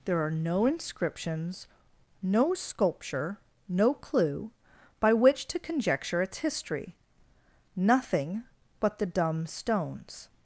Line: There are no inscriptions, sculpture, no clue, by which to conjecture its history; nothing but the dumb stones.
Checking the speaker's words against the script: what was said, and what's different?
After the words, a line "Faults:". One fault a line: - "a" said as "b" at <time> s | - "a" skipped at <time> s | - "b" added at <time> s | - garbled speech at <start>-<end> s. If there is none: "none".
There are no inscriptions, no sculpture, no clue, by which to conjecture its history; nothing but the dumb stones.
Faults:
- "no" added at 2.2 s